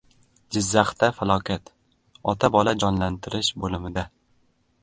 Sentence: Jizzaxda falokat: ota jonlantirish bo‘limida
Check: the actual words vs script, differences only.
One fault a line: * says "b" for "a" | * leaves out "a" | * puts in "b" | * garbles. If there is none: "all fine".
* puts in "bola"